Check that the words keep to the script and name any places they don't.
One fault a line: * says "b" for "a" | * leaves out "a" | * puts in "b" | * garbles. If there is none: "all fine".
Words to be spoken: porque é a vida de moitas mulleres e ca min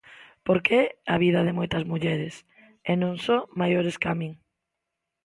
* puts in "non só maiores"